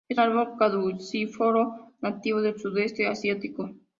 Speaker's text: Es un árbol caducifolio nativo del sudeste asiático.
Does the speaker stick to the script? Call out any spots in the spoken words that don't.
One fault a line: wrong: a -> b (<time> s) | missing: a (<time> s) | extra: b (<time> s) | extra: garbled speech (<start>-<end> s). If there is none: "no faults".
missing: un (0.2 s)